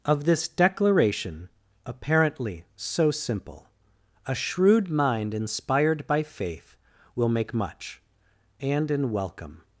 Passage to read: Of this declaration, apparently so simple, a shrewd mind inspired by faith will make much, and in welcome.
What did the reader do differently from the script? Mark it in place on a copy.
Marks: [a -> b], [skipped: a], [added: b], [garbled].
Of this declaration, apparently so simple, a shrewd mind inspired by faith will make much, and in welcome.